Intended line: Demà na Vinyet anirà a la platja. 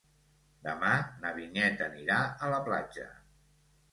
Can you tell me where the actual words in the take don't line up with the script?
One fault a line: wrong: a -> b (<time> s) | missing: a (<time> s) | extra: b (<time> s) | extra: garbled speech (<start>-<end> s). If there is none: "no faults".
no faults